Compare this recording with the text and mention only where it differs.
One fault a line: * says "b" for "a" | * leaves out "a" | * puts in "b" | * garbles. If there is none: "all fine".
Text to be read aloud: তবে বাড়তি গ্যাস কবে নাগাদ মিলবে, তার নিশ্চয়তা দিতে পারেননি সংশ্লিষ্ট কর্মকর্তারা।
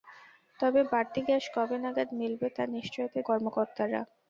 * leaves out "দিতে পারেননি সংশ্লিষ্ট"